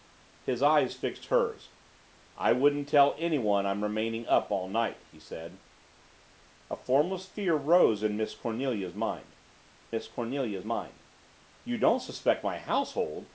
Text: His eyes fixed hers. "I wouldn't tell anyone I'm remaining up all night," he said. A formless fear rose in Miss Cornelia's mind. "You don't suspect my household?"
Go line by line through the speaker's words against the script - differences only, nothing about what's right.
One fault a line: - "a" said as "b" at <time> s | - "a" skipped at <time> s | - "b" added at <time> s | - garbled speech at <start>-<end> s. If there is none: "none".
- "Miss Cornelia's mind" added at 9.9 s